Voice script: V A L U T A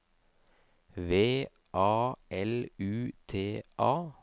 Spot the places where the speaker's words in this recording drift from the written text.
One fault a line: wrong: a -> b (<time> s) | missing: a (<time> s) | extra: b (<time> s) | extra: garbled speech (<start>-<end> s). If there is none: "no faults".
no faults